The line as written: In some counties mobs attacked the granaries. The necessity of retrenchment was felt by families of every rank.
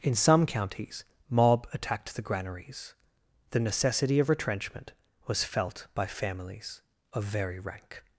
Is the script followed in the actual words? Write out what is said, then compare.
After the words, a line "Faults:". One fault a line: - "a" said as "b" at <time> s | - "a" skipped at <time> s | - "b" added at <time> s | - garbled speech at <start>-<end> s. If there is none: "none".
In some counties mob attacked the granaries. The necessity of retrenchment was felt by families of very rank.
Faults:
- "mobs" said as "mob" at 1.3 s
- "every" said as "very" at 7.2 s